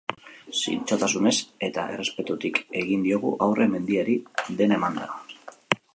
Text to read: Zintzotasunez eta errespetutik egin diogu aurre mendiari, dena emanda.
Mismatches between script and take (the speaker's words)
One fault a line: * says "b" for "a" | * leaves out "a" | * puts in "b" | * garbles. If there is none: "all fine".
all fine